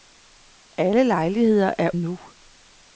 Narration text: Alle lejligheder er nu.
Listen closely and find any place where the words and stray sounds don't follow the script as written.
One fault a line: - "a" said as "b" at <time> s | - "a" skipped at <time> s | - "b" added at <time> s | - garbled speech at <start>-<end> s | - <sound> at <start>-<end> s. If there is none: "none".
none